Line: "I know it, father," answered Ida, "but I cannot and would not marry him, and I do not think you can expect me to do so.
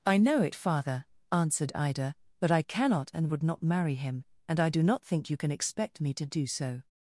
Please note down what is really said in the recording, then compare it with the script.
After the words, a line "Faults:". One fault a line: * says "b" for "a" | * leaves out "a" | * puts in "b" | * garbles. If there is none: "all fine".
"I know it, father," answered Ida, "but I cannot and would not marry him, and I do not think you can expect me to do so.
Faults:
all fine